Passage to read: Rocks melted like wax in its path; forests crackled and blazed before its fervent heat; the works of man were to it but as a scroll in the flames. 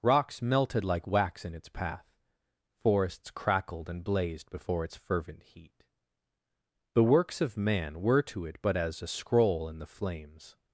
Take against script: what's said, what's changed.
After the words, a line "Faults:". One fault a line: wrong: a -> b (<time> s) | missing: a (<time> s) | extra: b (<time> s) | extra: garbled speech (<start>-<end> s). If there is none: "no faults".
Rocks melted like wax in its path; forests crackled and blazed before its fervent heat; the works of man were to it but as a scroll in the flames.
Faults:
no faults